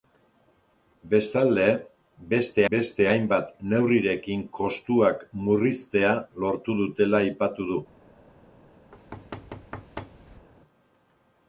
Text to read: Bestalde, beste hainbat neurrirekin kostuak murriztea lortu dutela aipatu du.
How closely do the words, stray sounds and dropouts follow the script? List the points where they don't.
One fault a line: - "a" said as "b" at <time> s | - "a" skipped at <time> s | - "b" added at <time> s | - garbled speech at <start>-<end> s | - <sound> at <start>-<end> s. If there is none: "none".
- "beste" added at 2.7 s
- thud at 8.9-10.5 s